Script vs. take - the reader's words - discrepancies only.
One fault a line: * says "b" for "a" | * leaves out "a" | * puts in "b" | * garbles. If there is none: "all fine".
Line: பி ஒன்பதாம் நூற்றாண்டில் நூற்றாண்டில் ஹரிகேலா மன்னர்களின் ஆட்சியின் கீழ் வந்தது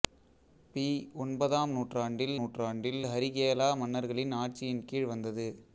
all fine